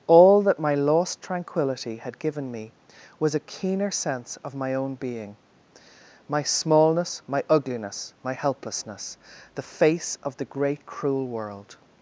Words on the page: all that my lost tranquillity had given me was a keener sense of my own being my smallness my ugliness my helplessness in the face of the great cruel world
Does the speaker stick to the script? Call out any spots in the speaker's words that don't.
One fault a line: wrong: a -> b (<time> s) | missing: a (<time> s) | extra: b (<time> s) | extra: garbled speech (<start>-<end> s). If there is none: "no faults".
missing: in (9.2 s)